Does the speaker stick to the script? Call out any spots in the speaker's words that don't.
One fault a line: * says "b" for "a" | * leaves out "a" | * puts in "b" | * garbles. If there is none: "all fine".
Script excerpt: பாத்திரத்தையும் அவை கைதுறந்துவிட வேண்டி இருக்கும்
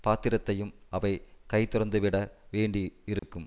all fine